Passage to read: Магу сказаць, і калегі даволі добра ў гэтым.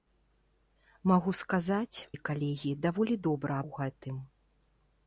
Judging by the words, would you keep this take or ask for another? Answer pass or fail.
pass